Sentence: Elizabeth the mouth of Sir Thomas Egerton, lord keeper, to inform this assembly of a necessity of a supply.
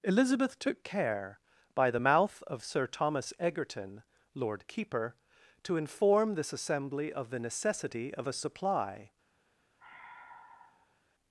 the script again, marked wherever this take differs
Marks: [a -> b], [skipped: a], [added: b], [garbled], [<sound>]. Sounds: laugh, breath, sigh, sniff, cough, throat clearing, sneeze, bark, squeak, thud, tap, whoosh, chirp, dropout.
Elizabeth [added: took care by] the mouth of Sir Thomas Egerton, lord keeper, to inform this assembly of [a -> the] necessity of a supply. [sigh]